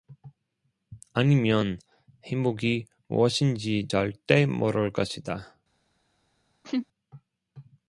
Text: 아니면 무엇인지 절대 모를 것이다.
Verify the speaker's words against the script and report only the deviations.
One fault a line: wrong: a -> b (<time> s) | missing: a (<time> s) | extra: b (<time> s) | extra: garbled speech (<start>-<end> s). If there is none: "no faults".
extra: 행복이 (2.2 s)